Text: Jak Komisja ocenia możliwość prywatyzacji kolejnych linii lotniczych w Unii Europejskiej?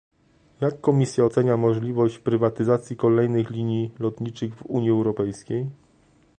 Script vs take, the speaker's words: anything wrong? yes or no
no